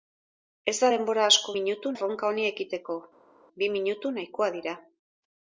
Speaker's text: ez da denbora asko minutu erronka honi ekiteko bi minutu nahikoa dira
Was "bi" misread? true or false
false